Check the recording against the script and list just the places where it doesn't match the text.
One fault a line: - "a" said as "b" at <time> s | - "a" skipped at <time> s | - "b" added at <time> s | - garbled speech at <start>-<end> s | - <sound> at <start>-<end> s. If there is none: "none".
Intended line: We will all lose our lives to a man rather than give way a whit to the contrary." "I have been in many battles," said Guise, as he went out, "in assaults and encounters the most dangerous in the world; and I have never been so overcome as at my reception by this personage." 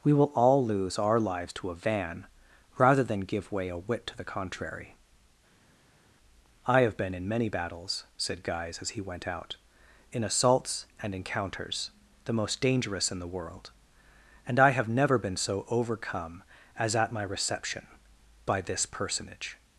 - "man" said as "van" at 1.8 s